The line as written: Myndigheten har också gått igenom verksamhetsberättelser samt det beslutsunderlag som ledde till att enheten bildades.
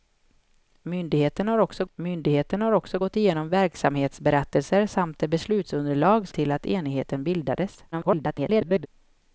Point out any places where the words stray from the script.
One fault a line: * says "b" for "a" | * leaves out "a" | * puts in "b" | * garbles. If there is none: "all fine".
* puts in "myndigheten har också"
* leaves out "som ledde"
* garbles